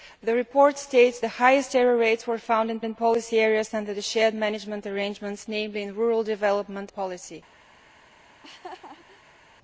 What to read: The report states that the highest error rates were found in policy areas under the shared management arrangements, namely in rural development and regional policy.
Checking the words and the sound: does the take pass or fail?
fail